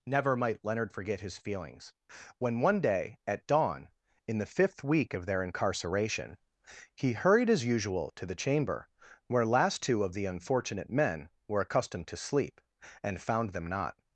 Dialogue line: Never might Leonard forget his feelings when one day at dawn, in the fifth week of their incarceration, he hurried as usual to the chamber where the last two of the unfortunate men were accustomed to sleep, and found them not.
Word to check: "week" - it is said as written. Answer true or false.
true